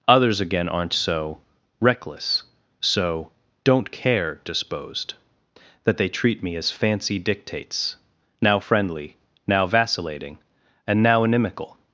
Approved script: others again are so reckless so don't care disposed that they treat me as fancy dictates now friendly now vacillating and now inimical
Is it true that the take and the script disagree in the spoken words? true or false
true